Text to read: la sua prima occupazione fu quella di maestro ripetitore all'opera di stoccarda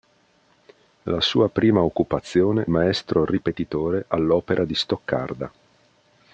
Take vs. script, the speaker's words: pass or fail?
fail